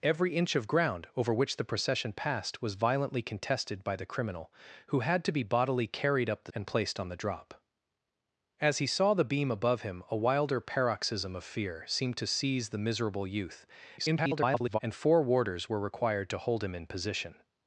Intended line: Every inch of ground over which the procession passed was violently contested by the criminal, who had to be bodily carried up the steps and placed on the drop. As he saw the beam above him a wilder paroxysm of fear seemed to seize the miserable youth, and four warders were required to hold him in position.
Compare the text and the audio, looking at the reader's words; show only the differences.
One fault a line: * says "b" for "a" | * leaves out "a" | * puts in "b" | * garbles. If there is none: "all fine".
* leaves out "steps"
* garbles